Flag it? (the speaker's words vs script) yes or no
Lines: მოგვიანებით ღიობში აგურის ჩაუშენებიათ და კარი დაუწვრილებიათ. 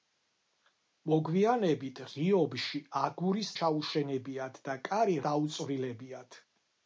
no